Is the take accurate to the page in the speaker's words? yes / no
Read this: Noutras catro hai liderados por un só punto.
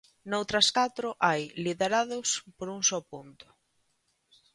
yes